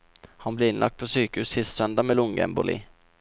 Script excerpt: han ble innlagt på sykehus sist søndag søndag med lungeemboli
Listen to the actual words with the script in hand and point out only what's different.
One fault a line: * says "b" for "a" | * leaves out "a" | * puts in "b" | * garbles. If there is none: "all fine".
* leaves out "søndag"